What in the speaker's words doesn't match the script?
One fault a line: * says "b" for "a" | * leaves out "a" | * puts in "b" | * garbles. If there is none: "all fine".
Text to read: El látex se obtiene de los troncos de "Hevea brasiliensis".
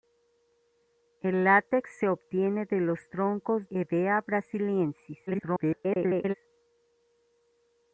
* leaves out "de"
* garbles